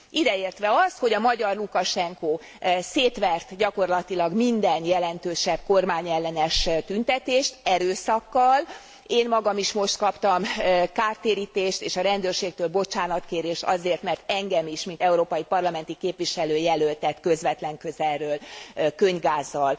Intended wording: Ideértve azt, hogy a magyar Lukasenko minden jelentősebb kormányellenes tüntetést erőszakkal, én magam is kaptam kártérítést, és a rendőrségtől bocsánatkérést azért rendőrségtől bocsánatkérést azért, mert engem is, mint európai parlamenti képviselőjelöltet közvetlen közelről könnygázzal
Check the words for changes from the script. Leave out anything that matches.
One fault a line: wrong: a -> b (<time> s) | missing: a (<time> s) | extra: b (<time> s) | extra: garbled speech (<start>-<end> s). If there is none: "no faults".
extra: szétvert gyakorlatilag (2.8 s)
extra: most (9.7 s)
missing: rendőrségtől bocsánatkérést azért (14.0 s)